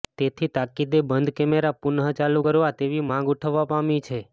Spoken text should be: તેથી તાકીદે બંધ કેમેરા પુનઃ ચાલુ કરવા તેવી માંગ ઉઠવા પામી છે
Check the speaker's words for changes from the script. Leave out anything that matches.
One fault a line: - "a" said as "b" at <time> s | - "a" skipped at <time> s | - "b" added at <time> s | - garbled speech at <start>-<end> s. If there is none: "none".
none